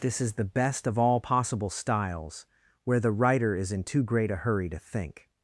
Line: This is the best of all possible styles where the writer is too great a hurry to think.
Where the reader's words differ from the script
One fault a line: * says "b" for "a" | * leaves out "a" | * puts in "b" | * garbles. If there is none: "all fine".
* puts in "in"